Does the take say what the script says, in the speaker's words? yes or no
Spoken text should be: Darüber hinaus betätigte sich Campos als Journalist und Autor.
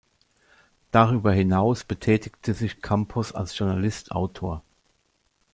no